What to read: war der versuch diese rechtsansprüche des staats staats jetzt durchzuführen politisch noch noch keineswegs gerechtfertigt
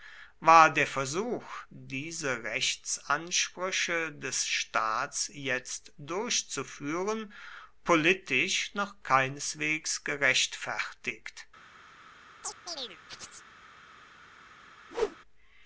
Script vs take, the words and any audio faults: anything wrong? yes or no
yes